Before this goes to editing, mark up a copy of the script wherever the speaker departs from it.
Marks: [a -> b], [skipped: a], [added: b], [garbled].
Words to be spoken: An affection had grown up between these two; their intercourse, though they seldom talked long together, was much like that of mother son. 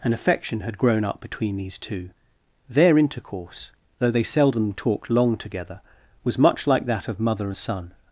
An affection had grown up between these two; their intercourse, though they seldom talked long together, was much like that of mother son.